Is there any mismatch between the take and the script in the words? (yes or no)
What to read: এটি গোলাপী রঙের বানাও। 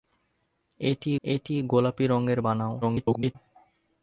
yes